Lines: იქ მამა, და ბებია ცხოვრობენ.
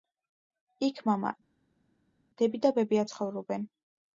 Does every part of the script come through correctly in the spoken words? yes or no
no